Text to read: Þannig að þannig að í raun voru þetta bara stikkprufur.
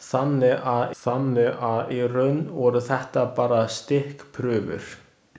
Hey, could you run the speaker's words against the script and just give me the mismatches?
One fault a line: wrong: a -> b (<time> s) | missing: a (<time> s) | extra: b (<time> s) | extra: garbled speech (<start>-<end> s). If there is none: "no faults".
no faults